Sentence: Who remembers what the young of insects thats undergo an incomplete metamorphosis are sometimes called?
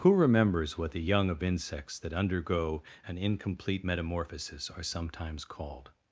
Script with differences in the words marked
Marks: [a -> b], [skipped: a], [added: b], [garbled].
Who remembers what the young of insects [thats -> that] undergo an incomplete metamorphosis are sometimes called?